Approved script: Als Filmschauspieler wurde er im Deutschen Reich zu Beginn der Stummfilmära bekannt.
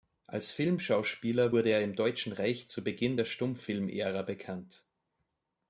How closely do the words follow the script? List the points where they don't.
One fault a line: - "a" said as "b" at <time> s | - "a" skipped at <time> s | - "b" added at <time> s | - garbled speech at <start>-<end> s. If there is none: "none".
none